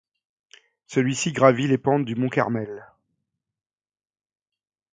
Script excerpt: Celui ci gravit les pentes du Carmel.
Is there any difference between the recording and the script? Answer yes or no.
yes